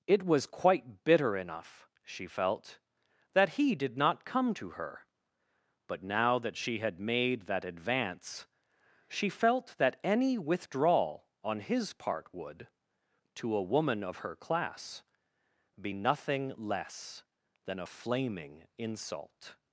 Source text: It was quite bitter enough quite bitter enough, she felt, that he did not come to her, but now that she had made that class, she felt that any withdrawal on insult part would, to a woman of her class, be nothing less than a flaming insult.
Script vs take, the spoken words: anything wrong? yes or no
yes